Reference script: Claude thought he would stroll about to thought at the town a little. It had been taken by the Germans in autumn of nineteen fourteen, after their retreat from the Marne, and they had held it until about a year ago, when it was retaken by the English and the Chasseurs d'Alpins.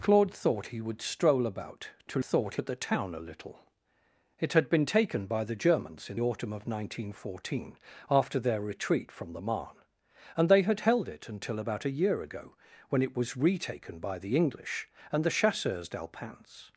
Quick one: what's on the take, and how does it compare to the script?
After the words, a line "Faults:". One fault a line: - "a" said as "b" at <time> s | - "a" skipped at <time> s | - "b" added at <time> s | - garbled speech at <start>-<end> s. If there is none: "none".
Claude thought he would stroll about to thought at the town a little. It had been taken by the Germans in autumn of nineteen fourteen, after their retreat from the Marne, and they had held it until about a year ago, when it was retaken by the English and the Chasseurs d'Alpins.
Faults:
none